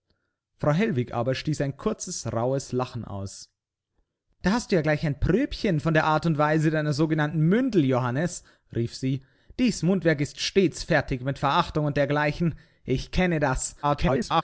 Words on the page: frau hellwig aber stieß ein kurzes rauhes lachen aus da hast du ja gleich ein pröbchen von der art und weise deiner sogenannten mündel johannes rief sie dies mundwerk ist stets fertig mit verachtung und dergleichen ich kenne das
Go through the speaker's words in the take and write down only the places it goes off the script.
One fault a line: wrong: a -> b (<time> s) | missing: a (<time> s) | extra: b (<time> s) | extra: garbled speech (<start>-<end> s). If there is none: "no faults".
extra: garbled speech (13.8-14.4 s)